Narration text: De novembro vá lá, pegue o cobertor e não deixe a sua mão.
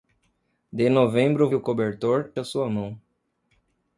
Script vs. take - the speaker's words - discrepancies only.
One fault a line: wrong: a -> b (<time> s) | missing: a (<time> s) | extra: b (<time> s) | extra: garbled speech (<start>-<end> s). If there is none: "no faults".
missing: vá lá pegue (1.5 s)
missing: e não deixe (2.3 s)